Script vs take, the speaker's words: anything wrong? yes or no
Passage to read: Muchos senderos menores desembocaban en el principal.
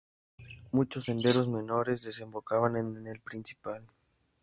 no